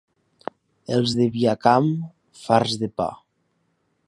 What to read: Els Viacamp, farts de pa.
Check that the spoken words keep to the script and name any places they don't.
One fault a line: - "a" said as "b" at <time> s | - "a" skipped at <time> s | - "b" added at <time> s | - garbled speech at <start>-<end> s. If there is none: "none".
- "de" added at 1.2 s